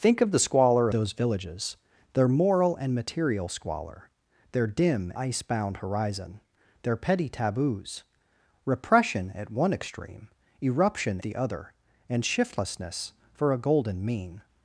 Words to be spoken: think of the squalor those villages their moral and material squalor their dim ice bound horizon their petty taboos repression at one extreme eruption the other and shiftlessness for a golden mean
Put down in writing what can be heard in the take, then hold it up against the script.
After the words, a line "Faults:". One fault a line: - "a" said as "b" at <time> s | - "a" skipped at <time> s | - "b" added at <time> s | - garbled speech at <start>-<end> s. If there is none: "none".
think of the squalor those villages their moral and material squalor their dim ice bound horizon their petty taboos repression at one extreme eruption the other and shiftlessness for a golden mean
Faults:
none